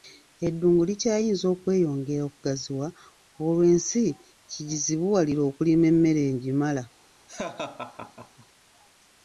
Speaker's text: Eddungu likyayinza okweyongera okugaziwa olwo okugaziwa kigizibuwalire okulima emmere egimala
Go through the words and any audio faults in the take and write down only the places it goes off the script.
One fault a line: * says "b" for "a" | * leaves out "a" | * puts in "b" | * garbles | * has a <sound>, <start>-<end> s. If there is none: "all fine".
* says "ensi" for "okugaziwa"
* has a laugh, 7.3-8.5 s